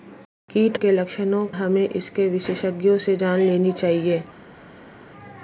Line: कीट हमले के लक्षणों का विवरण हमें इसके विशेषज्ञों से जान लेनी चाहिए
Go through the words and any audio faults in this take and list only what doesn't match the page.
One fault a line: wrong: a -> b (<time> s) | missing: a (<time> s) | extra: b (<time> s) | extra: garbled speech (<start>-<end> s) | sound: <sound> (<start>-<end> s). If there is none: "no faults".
missing: हमले (0.8 s)
missing: का विवरण (1.4 s)